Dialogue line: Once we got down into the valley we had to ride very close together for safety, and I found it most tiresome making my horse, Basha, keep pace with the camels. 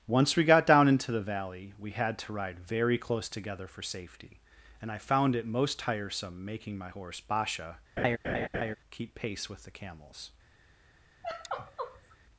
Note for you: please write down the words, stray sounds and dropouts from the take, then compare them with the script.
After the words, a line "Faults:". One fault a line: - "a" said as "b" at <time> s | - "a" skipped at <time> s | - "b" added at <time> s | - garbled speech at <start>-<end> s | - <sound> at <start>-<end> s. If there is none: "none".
Once we got down into the valley we had to ride very close together for safety, and I found it most tiresome making my horse, Basha, keep pace with the camels.
Faults:
- laugh at 8.0-8.8 s
- sigh at 11.2-12.2 s